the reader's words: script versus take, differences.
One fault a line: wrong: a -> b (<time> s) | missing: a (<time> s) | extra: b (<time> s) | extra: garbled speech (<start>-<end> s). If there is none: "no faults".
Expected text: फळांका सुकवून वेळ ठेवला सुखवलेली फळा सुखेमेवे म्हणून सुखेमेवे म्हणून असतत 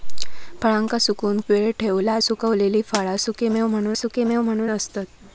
no faults